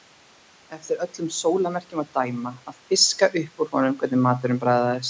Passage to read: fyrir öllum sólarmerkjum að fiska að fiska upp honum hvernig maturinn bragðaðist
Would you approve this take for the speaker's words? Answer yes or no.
no